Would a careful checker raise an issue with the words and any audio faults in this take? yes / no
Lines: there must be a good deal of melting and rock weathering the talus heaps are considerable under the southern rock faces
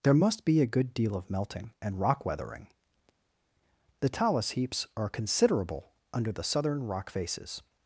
no